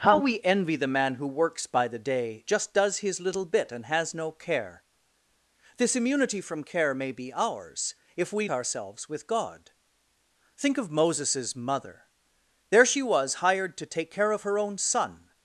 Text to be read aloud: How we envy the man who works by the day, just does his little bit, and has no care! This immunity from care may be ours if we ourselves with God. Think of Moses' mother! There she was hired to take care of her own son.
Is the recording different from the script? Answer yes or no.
no